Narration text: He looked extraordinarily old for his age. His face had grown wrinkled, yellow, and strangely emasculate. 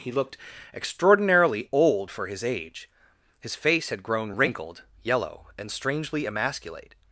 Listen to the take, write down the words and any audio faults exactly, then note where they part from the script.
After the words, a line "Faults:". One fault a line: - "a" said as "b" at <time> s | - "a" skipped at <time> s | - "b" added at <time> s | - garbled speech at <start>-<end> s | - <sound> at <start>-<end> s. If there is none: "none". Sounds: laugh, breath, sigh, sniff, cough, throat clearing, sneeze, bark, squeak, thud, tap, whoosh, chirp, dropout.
He looked extraordinarily old for his age. His face had grown wrinkled, yellow, and strangely emasculate.
Faults:
none